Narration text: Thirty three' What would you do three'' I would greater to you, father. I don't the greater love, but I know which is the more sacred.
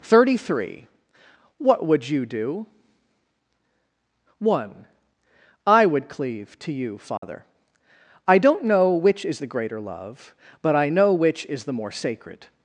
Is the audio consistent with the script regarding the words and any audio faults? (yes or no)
no